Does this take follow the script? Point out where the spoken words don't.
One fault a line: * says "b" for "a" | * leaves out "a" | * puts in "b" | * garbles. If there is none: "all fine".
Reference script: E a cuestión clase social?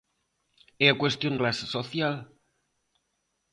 all fine